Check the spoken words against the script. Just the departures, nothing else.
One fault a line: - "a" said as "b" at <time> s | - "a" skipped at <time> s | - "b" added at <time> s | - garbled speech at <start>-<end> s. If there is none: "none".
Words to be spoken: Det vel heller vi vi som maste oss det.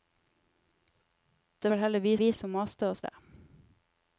none